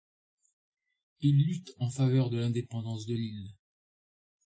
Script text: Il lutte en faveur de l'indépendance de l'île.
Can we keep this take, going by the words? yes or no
yes